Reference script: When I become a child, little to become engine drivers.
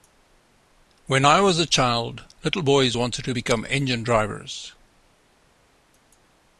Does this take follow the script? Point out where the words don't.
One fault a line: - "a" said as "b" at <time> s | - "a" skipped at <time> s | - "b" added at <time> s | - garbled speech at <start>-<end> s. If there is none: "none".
- "become" said as "was" at 1.4 s
- "boys wanted" added at 2.6 s